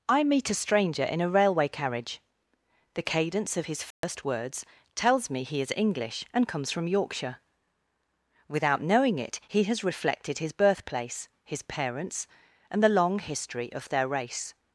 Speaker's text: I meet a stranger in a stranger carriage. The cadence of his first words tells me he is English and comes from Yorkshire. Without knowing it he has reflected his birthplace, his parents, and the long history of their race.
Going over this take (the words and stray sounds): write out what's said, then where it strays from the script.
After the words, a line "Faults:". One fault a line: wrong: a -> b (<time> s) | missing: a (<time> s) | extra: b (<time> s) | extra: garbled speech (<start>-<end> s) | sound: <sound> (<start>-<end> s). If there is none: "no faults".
I meet a stranger in a railway carriage. The cadence of his first words tells me he is English and comes from Yorkshire. Without knowing it he has reflected his birthplace, his parents, and the long history of their race.
Faults:
wrong: stranger -> railway (1.3 s)
sound: dropout (3.9-4.0 s)